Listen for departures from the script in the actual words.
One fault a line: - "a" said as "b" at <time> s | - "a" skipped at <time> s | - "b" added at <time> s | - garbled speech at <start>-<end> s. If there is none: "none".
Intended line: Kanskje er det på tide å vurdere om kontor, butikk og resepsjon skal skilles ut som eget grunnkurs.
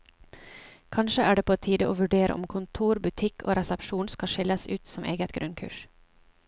none